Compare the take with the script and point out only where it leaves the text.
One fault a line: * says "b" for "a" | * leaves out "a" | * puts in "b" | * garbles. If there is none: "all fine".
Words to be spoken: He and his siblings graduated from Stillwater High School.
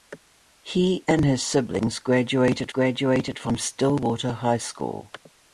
* puts in "graduated"